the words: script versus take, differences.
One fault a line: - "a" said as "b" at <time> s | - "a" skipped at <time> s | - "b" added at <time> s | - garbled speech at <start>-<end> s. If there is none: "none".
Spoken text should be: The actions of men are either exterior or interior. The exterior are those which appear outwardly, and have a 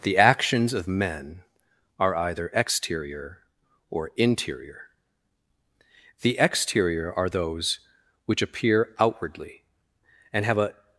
none